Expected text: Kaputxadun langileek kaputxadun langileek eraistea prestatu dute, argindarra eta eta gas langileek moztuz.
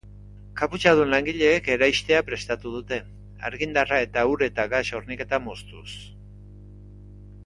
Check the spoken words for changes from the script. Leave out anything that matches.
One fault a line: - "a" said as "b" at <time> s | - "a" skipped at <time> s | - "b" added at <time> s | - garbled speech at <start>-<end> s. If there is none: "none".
- "kaputxadun langileek" skipped at 1.7 s
- "ur" added at 4.3 s
- "langileek" said as "horniketa" at 5.0 s